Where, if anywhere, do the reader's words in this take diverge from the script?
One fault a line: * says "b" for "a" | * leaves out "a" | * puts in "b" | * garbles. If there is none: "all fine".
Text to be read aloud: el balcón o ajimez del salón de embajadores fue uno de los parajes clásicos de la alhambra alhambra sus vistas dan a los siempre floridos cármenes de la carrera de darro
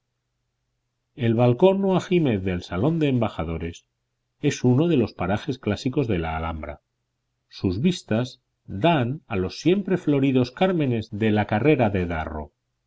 * says "es" for "fue"
* leaves out "alhambra"